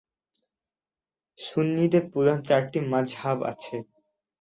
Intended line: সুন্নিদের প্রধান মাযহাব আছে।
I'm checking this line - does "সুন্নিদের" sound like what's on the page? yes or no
yes